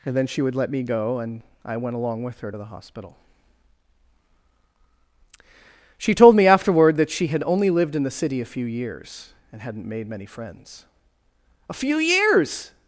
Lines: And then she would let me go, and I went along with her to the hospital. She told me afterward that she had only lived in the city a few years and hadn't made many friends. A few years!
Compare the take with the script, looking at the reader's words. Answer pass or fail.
pass